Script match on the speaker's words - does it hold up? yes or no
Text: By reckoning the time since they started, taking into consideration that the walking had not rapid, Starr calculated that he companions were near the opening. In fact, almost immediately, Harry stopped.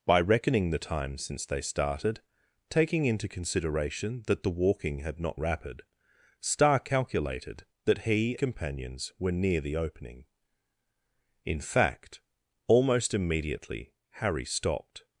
yes